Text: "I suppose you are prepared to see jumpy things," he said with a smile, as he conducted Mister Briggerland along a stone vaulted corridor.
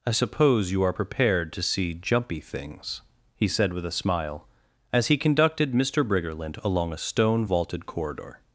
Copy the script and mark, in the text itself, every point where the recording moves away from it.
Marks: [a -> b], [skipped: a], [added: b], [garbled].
"I suppose you are prepared to see jumpy things," he said with a smile, as he conducted Mister Briggerland along a stone vaulted corridor.